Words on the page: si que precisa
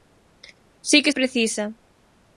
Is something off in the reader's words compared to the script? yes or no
no